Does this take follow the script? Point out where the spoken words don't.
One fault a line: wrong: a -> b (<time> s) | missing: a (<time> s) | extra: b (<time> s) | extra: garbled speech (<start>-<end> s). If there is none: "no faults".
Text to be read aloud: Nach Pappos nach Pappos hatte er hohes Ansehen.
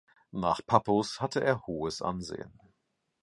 missing: nach Pappos (1.2 s)